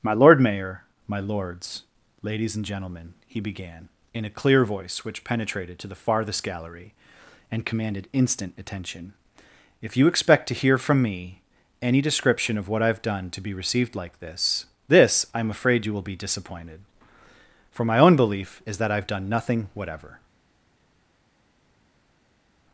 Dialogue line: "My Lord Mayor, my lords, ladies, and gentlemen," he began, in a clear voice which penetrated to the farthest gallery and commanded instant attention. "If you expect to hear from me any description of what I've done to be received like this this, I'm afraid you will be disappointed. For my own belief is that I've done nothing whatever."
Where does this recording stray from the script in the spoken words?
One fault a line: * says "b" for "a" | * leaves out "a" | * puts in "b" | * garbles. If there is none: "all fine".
all fine